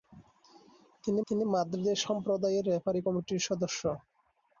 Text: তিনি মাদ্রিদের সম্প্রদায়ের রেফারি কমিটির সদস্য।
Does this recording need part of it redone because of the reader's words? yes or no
yes